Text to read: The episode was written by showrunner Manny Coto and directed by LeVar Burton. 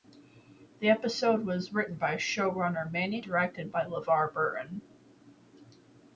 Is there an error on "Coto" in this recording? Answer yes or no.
yes